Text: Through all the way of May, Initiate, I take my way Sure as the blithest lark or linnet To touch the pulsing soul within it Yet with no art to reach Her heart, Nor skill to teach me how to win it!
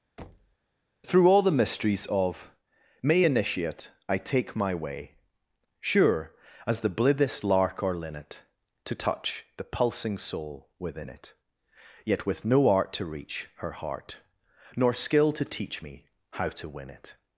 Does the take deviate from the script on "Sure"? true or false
false